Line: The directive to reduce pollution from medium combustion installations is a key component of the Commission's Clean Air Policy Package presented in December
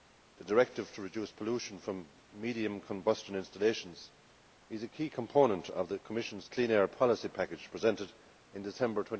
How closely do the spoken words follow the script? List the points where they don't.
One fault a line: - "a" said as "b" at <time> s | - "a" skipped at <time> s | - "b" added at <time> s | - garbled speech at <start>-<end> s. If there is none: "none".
none